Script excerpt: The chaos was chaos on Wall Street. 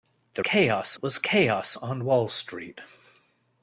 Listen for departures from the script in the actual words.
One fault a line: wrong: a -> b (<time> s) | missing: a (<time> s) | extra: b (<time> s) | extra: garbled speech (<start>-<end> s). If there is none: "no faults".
no faults